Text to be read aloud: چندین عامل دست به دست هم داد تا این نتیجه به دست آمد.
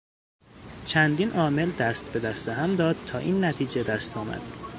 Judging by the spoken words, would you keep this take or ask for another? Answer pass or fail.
fail